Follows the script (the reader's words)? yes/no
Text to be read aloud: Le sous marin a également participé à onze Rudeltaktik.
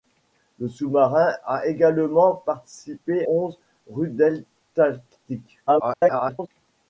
no